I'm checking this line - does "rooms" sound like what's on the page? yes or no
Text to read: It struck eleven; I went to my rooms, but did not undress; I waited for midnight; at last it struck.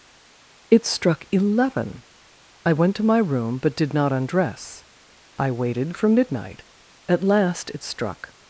no